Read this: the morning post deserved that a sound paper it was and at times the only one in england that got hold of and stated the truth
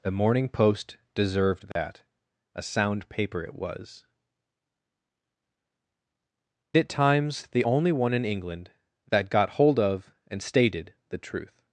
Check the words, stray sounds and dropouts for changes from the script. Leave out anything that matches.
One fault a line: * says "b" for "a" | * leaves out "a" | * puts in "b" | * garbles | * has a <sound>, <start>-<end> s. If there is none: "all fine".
* has a dropout, 1.7-1.8 s
* leaves out "and"